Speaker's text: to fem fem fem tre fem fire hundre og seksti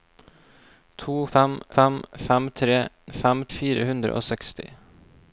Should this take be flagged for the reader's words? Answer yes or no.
no